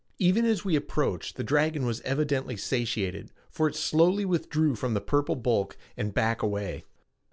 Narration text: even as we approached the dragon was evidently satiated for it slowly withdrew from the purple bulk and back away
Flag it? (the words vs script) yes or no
no